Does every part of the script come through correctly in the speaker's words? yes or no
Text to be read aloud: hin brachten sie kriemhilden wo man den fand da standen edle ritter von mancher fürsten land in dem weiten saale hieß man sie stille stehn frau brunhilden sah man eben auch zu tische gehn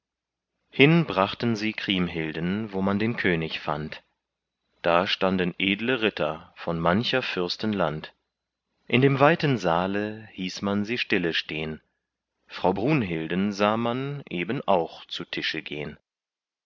no